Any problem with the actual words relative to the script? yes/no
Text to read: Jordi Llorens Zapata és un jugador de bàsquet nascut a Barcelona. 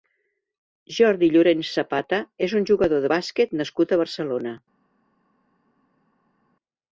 no